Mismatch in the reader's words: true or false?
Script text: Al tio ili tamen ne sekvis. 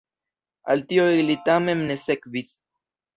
false